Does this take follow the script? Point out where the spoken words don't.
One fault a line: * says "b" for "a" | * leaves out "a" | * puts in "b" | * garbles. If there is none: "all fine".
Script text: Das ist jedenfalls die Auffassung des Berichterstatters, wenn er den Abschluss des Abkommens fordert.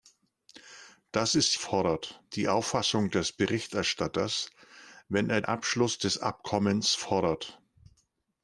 * says "fordert" for "jedenfalls"
* leaves out "den"